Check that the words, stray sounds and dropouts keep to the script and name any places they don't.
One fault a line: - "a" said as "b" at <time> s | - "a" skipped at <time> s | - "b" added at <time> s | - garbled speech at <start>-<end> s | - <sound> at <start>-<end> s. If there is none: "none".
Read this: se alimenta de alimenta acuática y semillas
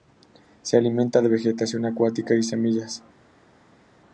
- "alimenta" said as "vegetación" at 1.3 s